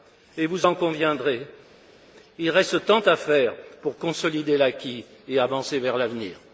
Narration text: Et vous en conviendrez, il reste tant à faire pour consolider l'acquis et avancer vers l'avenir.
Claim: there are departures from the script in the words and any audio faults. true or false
false